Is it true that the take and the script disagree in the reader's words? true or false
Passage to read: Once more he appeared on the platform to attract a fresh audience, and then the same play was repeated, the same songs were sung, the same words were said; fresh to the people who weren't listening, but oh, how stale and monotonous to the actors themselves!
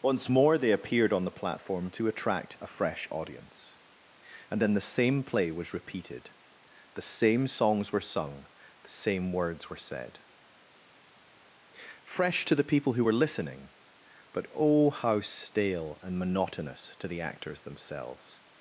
true